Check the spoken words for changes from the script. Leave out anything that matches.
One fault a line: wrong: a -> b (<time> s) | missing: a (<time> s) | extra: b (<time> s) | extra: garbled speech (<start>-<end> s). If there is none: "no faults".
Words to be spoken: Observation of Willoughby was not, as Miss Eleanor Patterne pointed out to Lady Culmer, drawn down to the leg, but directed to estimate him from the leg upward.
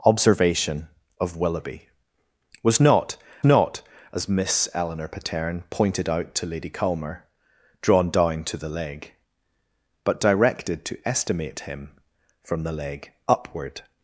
extra: not (3.4 s)